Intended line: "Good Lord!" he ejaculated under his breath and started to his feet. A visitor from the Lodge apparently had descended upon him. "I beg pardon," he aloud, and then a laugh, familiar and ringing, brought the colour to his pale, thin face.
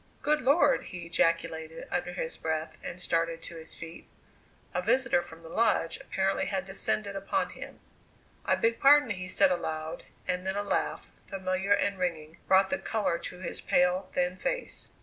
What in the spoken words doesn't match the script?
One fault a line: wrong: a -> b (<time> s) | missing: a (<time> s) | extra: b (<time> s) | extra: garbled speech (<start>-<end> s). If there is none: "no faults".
extra: said (9.3 s)